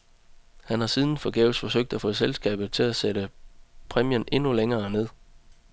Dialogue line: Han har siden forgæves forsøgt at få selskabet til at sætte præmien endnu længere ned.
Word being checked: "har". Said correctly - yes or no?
yes